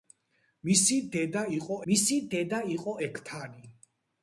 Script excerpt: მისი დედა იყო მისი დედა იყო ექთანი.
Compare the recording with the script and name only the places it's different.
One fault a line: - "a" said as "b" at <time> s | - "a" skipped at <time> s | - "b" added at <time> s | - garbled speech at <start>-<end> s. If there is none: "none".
none